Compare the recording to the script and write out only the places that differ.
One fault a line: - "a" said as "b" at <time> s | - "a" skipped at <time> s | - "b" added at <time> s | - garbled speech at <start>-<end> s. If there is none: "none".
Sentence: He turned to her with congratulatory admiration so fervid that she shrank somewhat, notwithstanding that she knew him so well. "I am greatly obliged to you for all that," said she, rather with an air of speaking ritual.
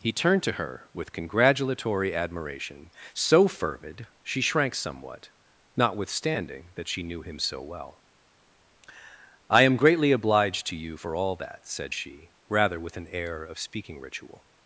- "that" skipped at 4.1 s